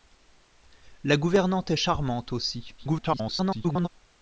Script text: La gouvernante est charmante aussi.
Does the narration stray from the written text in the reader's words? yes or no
yes